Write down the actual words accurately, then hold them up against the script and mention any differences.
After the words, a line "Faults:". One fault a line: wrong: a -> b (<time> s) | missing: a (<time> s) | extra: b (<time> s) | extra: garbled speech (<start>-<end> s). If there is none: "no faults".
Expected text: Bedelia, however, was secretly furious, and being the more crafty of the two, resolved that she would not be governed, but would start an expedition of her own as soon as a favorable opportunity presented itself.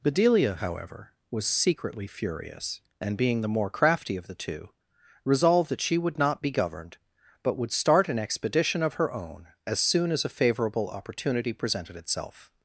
Bedelia, however, was secretly furious, and being the more crafty of the two, resolved that she would not be governed, but would start an expedition of her own as soon as a favorable opportunity presented itself.
Faults:
no faults